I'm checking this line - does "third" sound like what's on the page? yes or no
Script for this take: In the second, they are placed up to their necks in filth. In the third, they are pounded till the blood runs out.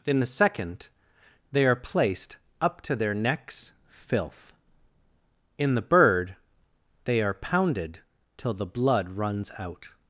no